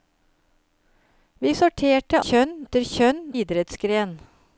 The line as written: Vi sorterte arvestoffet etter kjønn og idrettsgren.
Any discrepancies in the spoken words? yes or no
yes